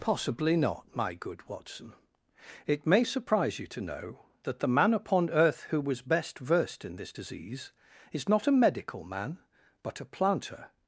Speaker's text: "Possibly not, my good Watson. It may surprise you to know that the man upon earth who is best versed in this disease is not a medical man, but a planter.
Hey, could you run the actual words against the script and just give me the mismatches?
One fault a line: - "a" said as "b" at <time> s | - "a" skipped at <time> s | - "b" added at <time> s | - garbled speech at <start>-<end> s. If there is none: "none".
- "is" said as "was" at 5.8 s